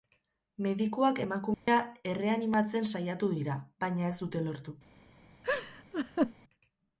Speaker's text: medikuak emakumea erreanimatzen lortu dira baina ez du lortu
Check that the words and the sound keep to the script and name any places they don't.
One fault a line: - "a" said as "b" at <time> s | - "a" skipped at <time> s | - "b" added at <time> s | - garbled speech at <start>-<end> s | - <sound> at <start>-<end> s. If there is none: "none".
- dropout at 1.5-1.7 s
- "lortu" said as "saiatu" at 2.9 s
- "du" said as "dute" at 4.2 s
- laugh at 5.4-6.3 s